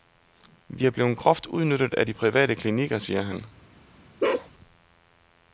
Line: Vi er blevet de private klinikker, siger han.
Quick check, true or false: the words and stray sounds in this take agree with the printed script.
false